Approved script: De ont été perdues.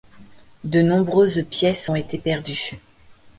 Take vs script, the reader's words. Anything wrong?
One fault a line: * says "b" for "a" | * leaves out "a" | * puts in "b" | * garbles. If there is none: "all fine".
* puts in "nombreuses pièces"